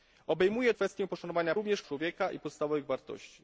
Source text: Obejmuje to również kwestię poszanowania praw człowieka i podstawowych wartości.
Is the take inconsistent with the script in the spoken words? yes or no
yes